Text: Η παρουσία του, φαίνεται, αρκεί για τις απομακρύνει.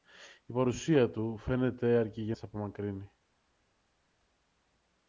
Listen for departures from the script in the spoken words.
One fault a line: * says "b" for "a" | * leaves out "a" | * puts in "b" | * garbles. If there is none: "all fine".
all fine